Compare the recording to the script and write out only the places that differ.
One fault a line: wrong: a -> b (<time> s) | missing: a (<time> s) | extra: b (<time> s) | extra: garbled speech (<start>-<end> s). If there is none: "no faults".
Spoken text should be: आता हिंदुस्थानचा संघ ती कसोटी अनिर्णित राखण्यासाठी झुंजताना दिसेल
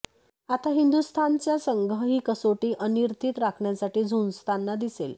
wrong: ती -> ही (2.0 s)